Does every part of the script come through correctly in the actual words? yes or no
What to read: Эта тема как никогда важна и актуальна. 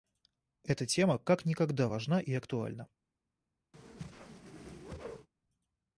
yes